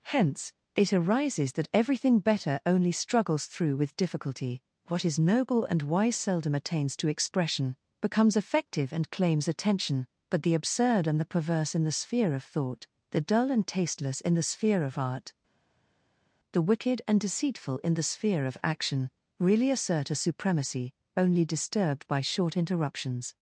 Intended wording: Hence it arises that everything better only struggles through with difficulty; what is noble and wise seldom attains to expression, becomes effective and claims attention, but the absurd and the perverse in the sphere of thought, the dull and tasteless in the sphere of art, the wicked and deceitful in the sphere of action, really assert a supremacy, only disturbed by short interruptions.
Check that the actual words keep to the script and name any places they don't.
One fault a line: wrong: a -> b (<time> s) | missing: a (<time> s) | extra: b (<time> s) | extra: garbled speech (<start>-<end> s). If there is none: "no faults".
no faults